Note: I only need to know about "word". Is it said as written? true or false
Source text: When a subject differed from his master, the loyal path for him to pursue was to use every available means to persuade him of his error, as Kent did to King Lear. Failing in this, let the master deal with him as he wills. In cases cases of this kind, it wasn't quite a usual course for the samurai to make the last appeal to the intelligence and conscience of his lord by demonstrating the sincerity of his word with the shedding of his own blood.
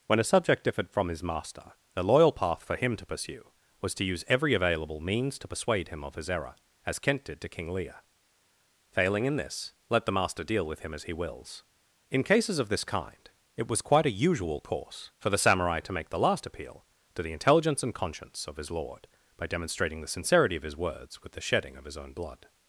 false